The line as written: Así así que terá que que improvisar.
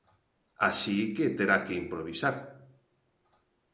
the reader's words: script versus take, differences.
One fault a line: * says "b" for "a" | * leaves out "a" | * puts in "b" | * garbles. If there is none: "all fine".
* leaves out "así"
* leaves out "que"